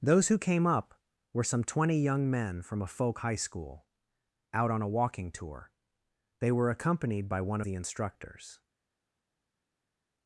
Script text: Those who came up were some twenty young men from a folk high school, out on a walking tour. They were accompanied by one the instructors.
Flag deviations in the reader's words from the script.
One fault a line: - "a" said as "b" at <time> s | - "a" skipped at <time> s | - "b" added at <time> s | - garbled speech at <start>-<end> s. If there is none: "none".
none